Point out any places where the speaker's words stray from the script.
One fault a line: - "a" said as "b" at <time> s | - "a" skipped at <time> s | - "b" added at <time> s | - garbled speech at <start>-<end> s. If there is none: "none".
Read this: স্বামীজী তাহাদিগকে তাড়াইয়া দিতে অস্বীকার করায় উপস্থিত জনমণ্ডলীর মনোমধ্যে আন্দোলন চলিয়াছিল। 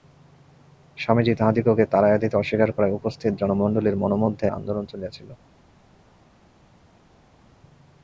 none